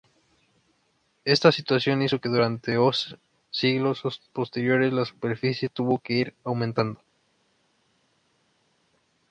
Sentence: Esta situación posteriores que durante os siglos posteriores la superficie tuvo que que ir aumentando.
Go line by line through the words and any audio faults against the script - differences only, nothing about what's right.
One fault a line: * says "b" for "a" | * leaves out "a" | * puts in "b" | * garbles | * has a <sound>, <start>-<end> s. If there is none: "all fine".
* says "hizo" for "posteriores"
* leaves out "que"